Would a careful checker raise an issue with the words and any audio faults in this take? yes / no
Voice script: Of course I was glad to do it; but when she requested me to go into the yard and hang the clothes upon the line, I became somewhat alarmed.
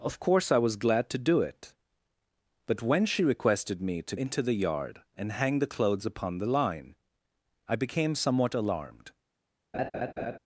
yes